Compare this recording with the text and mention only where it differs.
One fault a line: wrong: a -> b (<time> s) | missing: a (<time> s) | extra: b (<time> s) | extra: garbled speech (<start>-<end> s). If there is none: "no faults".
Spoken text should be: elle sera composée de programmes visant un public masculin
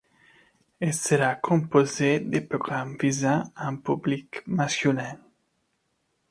no faults